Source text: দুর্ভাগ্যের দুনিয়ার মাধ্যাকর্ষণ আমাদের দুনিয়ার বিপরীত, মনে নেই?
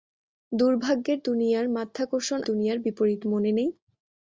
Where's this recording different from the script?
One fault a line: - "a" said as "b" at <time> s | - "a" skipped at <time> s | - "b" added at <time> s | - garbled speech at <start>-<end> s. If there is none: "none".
- "আমাদের" skipped at 2.4 s